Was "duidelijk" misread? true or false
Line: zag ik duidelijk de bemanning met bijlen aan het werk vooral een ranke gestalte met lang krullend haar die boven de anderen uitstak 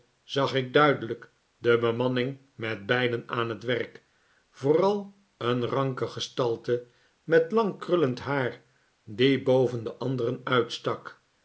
false